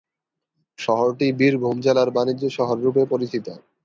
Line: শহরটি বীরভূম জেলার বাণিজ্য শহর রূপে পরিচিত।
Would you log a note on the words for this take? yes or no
no